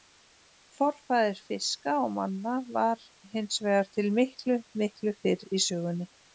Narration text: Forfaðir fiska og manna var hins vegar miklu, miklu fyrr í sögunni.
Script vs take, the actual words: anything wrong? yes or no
yes